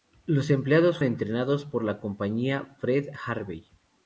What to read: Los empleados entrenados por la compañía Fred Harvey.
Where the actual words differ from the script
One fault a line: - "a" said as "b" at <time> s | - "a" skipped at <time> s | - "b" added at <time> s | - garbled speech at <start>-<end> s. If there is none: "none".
none